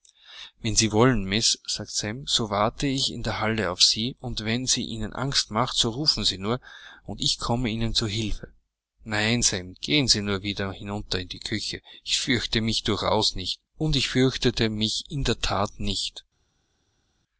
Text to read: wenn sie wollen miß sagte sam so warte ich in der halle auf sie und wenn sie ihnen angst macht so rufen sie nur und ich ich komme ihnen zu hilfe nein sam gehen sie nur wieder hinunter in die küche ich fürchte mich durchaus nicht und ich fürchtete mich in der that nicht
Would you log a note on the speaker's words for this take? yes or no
yes